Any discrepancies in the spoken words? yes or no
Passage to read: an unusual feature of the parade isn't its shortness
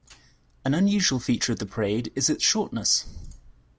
yes